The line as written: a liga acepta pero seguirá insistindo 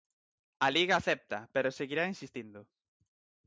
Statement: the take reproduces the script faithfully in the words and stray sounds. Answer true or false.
true